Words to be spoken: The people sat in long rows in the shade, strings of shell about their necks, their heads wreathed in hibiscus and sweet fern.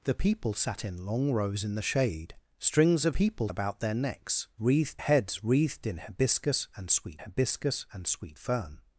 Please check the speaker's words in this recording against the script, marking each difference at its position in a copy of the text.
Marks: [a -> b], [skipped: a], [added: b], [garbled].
The people sat in long rows in the shade, strings of [shell -> people] about their necks, [their -> wreathed] heads wreathed in hibiscus and sweet [added: hibiscus and sweet] fern.